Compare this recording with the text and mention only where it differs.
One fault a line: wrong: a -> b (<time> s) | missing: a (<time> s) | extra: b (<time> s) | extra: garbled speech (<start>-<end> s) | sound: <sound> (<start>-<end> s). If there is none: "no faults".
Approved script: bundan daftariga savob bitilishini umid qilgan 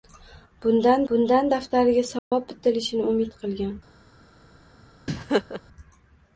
extra: bundan (1.1 s)
sound: dropout (2.2-2.3 s)
sound: laugh (5.1-5.6 s)